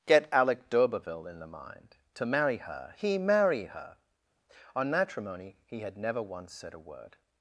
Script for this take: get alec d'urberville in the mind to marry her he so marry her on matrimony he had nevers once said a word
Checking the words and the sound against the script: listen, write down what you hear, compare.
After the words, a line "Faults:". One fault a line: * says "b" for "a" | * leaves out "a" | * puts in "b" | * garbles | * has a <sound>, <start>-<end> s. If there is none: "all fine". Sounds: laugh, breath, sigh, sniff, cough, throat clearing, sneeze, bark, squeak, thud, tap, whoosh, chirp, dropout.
get alec d'urberville in the mind to marry her he marry her on matrimony he had never once said a word
Faults:
* leaves out "so"
* says "never" for "nevers"